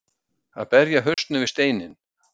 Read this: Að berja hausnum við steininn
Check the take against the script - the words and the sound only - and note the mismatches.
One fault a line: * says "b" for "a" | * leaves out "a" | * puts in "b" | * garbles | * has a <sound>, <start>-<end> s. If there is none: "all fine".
* has a dropout, 1.1-1.2 s